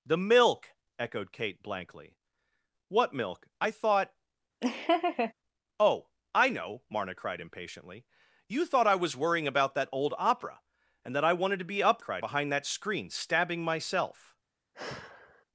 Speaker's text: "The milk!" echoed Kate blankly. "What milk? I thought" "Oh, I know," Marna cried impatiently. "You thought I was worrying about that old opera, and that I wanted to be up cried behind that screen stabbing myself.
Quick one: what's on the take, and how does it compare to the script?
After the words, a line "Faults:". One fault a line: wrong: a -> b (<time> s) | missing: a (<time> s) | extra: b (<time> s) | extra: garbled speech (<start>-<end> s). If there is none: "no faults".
"The milk!" echoed Kate blankly. "What milk? I thought" "Oh, I know," Marna cried impatiently. "You thought I was worrying about that old opera, and that I wanted to be up cried behind that screen stabbing myself.
Faults:
no faults